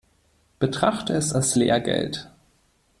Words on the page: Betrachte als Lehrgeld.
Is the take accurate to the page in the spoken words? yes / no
no